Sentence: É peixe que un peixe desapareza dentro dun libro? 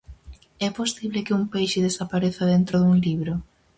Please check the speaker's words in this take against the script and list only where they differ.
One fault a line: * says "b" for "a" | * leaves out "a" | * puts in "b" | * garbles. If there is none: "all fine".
* says "posible" for "peixe"